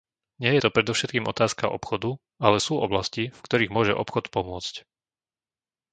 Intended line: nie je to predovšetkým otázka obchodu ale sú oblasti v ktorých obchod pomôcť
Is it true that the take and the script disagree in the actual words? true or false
true